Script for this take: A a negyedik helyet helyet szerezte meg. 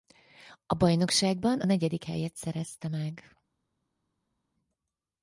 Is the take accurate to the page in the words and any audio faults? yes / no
no